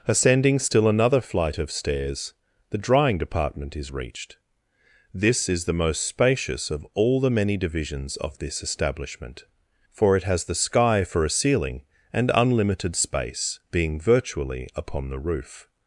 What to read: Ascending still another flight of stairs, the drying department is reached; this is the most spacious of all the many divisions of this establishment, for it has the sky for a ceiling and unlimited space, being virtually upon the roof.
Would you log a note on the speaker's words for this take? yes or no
no